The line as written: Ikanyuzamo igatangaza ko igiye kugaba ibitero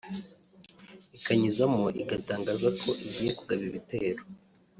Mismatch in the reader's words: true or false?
false